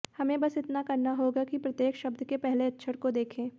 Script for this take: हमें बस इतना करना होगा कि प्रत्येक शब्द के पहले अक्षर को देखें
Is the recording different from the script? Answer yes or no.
no